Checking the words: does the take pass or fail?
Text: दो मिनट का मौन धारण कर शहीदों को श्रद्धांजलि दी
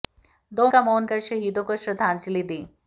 fail